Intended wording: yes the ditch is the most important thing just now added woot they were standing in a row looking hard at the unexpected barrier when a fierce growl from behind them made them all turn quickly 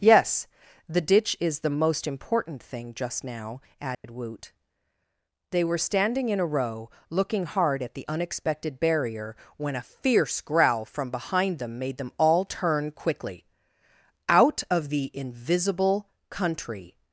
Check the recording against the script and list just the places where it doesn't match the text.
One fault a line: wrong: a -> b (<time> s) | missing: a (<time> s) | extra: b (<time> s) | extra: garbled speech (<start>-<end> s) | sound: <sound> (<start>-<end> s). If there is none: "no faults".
sound: dropout (3.9-4.0 s)
extra: out of the invisible country (14.3 s)